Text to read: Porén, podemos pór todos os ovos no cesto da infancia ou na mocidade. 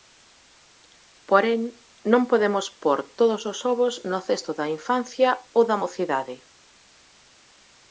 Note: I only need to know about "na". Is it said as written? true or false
false